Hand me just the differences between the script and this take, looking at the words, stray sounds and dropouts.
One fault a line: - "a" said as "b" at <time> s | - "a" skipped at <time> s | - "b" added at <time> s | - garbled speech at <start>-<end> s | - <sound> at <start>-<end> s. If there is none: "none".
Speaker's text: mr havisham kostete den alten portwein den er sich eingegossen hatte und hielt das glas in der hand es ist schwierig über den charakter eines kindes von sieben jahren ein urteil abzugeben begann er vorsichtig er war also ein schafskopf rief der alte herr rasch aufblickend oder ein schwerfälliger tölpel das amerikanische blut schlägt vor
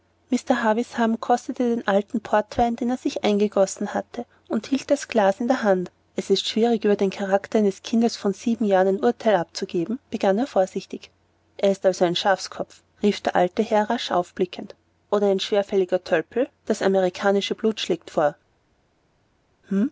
- "war" said as "ist" at 11.7 s